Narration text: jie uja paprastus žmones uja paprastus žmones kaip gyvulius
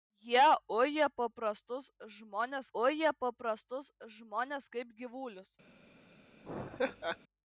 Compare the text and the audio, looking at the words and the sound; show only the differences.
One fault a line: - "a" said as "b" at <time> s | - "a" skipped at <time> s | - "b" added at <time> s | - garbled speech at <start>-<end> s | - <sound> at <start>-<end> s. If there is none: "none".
- laugh at 6.4-7.2 s